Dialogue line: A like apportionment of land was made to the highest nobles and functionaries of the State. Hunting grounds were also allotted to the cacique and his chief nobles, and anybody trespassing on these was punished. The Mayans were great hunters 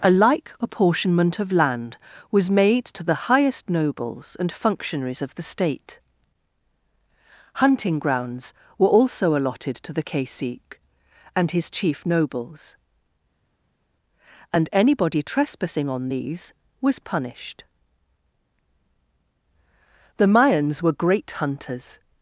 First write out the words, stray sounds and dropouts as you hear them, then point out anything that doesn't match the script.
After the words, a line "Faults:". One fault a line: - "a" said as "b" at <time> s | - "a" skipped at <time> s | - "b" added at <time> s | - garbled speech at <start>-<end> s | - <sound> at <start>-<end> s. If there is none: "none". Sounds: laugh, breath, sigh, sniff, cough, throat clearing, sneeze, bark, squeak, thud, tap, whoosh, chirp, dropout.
A like apportionment of land was made to the highest nobles and functionaries of the State. Hunting grounds were also allotted to the cacique and his chief nobles, and anybody trespassing on these was punished. The Mayans were great hunters
Faults:
none